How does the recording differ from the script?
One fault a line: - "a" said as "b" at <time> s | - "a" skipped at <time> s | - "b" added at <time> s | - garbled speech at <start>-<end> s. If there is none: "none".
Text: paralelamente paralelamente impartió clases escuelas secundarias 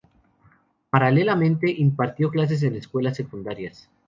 - "paralelamente" skipped at 1.7 s
- "en" added at 2.6 s